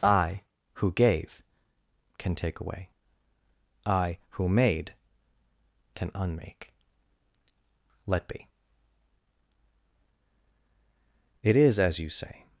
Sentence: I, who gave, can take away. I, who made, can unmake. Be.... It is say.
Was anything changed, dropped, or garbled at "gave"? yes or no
no